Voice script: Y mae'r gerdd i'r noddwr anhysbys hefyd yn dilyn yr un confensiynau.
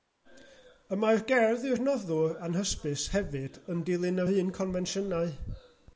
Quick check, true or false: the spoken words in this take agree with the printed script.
true